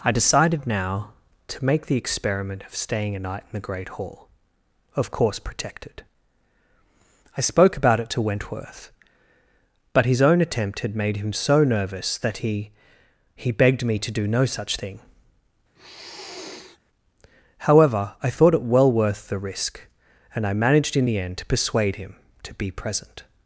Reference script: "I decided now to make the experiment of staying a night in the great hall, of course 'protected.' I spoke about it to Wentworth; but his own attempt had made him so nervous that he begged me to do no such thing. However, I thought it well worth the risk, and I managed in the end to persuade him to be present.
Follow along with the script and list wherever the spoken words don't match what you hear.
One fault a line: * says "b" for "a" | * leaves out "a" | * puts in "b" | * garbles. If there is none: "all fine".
* puts in "he"